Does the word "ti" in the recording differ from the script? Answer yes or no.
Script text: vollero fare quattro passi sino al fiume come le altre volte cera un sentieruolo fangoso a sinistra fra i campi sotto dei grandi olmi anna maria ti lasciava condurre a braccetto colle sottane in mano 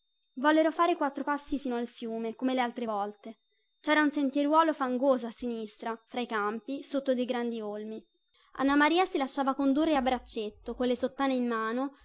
yes